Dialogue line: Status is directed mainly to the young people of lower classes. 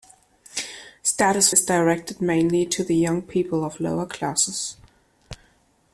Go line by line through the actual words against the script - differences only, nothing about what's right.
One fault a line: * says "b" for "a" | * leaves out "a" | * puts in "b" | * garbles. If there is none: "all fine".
all fine